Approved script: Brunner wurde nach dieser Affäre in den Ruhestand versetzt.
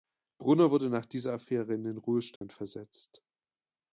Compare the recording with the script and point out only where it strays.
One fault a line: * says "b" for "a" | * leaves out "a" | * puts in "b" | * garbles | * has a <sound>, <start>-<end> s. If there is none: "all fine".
* has a dropout, 2.4-2.4 s